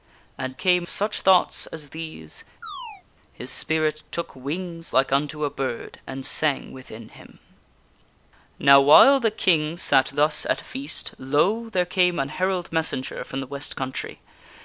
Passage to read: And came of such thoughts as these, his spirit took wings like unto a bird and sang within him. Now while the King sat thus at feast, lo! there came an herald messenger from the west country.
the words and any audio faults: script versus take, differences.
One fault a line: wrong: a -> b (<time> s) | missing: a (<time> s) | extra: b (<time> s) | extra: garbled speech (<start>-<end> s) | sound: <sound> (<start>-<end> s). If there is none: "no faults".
sound: chirp (2.6-3.0 s)